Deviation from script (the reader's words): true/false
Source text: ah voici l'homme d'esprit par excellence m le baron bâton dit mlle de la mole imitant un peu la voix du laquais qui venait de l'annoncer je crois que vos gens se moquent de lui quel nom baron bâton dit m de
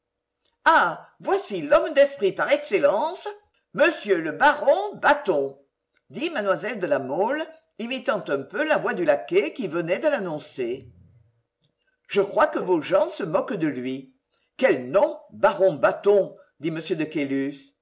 false